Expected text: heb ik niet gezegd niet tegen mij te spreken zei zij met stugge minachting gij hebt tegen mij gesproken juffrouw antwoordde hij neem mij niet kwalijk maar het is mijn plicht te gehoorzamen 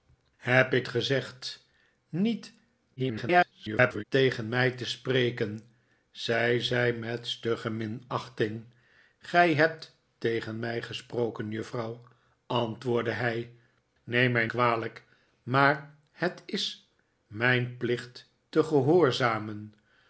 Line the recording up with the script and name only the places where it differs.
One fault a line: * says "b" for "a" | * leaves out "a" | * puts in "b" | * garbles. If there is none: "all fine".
* leaves out "niet"
* garbles
* leaves out "niet"